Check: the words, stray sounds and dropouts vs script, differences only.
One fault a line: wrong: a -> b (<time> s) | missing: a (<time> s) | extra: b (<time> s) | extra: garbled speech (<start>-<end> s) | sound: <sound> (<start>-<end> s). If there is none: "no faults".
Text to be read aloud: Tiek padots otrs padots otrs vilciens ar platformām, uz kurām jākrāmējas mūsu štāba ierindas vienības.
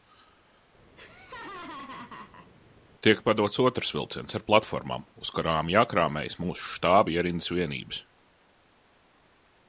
sound: laugh (0.9-2.5 s)
missing: padots otrs (3.9 s)